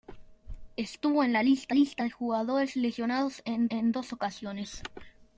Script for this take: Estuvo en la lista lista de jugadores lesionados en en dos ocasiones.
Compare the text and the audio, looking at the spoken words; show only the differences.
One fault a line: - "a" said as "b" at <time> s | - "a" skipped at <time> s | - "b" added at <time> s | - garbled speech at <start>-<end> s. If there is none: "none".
none